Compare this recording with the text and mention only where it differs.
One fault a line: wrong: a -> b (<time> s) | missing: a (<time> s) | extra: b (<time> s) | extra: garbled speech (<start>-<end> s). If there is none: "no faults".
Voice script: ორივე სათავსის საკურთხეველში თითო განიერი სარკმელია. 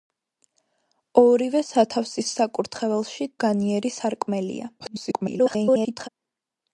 missing: თითო (3.3 s)
extra: garbled speech (4.8-6.1 s)